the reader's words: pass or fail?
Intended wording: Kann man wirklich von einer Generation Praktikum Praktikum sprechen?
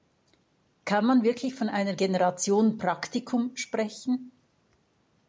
fail